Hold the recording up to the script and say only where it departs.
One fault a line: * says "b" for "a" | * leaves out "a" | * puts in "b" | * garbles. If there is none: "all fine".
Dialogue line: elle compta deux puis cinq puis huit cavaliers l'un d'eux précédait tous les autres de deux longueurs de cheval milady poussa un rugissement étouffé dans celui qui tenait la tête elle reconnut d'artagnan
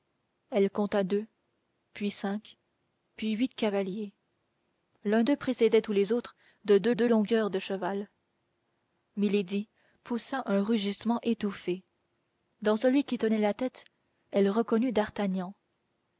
* puts in "deux"